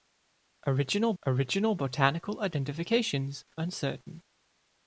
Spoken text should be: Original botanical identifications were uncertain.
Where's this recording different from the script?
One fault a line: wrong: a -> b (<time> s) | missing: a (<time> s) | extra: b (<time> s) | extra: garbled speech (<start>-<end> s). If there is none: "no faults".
extra: original (1.2 s)
missing: were (3.4 s)